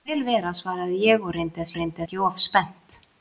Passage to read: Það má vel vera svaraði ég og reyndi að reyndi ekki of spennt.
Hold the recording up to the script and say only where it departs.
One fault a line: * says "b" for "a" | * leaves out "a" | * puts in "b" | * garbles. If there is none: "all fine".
all fine